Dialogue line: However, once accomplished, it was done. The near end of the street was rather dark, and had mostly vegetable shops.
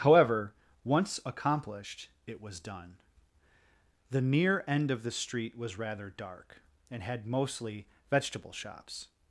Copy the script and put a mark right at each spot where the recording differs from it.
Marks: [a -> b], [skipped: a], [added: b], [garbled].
However, once accomplished, it was done. The near end of the street was rather dark, and had mostly vegetable shops.